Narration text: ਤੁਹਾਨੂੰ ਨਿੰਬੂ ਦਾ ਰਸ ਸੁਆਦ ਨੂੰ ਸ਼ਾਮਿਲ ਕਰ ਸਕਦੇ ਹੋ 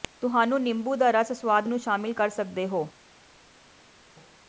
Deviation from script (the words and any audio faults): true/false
false